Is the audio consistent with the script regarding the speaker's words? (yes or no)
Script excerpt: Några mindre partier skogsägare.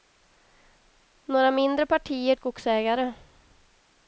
yes